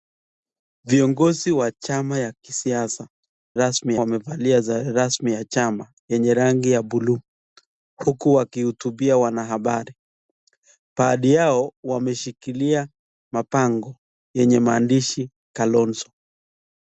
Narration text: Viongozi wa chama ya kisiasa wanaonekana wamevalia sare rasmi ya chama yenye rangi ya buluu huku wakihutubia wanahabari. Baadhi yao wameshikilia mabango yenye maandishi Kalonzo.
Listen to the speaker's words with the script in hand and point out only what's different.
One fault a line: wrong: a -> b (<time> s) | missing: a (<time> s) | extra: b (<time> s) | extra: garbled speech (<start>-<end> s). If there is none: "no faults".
wrong: wanaonekana -> rasmi (3.5 s)